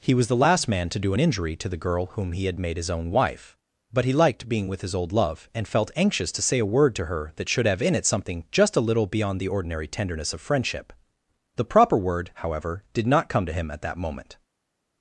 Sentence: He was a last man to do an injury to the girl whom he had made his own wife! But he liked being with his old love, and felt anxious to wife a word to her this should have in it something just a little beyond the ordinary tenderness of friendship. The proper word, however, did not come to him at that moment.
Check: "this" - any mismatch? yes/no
yes